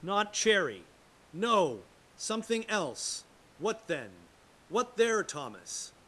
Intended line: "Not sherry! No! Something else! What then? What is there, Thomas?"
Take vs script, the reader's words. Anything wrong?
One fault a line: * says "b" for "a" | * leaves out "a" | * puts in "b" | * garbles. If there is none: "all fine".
* says "cherry" for "sherry"
* leaves out "is"